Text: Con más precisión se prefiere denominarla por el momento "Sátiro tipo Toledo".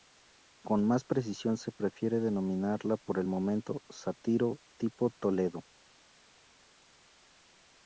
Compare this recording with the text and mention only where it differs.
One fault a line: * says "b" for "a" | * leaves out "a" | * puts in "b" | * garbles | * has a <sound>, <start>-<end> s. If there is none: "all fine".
all fine